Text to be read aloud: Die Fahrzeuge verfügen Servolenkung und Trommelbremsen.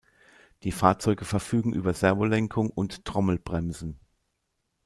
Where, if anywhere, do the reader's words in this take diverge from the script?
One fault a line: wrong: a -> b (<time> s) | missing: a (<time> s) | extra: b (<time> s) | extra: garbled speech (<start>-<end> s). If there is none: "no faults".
extra: über (1.7 s)